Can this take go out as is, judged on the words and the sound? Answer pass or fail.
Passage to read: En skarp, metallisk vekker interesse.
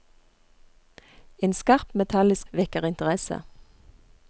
pass